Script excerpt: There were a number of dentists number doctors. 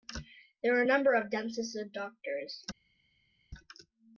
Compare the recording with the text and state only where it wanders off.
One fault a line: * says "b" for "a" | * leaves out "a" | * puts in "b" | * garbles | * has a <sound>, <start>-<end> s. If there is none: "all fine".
* says "and" for "number"